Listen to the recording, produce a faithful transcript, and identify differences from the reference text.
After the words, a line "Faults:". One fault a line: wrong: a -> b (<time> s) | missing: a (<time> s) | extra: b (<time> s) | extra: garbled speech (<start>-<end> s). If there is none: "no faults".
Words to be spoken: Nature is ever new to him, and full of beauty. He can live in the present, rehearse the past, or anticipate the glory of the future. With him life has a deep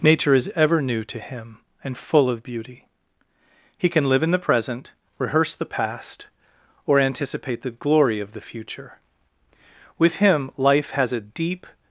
Nature is ever new to him, and full of beauty. He can live in the present, rehearse the past, or anticipate the glory of the future. With him life has a deep
Faults:
no faults